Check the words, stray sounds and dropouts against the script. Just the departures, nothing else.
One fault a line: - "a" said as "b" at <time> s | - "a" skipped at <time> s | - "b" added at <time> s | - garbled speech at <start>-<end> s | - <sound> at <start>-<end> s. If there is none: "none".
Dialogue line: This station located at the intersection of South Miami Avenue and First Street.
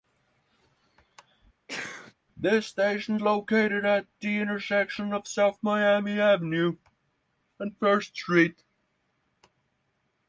- sneeze at 1.7-2.1 s